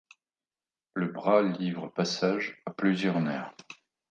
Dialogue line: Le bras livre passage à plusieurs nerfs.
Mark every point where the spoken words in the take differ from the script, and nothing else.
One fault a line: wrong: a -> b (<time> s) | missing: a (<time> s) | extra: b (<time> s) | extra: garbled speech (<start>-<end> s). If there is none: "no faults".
no faults